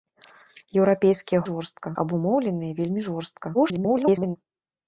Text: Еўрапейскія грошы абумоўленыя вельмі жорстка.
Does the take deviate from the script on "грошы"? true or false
true